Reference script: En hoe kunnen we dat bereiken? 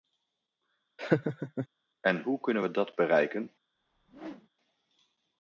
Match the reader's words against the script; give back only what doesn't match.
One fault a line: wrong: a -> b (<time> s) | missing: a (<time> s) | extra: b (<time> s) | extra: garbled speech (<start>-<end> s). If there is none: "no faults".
no faults